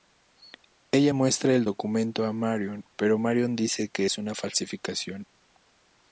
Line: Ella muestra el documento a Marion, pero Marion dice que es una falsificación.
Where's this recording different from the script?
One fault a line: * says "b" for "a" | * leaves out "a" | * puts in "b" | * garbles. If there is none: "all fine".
all fine